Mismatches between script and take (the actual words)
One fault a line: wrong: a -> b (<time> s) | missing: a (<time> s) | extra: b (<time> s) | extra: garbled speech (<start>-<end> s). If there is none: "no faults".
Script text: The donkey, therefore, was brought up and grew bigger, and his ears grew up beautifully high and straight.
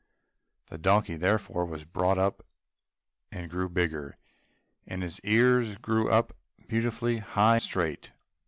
missing: and (7.6 s)